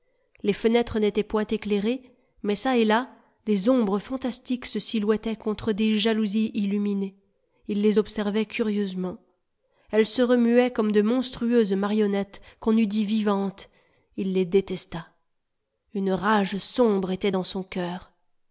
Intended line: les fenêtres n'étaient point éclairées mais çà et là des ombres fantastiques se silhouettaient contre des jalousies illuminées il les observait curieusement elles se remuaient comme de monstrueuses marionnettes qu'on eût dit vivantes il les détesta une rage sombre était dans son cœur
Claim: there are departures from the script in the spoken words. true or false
false